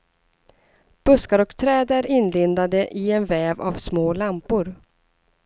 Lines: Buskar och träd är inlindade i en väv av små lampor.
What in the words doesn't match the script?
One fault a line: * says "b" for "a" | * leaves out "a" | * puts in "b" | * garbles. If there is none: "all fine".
all fine